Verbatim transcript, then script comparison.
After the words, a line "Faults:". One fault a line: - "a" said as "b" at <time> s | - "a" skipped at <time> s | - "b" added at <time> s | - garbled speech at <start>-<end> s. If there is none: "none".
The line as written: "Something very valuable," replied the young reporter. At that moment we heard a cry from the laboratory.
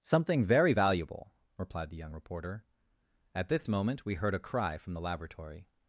"Something very valuable," replied the young reporter. At this moment we heard a cry from the laboratory.
Faults:
- "that" said as "this" at 3.5 s